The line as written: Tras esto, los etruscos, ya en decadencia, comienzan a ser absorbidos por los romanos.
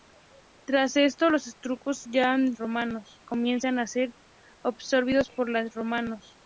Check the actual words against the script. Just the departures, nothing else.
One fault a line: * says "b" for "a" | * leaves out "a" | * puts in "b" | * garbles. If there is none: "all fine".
* says "romanos" for "decadencia"